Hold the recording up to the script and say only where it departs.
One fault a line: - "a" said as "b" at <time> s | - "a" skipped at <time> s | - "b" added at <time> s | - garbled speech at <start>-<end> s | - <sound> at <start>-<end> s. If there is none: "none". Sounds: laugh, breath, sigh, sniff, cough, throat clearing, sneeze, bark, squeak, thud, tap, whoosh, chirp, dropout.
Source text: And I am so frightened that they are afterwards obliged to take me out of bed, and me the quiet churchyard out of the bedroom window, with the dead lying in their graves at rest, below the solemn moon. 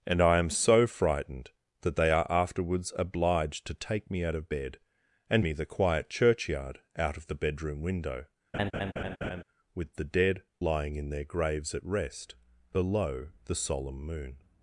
- laugh at 8.5-9.4 s